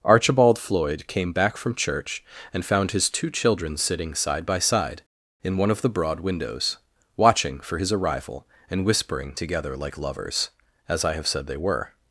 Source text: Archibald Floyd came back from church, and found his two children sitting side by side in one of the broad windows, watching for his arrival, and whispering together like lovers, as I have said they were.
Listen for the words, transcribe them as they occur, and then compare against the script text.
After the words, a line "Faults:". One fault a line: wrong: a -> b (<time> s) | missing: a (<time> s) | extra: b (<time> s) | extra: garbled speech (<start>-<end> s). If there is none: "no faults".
Archibald Floyd came back from church, and found his two children sitting side by side in one of the broad windows, watching for his arrival, and whispering together like lovers, as I have said they were.
Faults:
no faults